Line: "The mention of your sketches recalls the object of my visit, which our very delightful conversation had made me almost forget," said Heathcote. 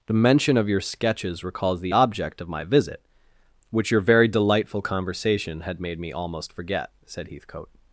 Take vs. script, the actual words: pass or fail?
fail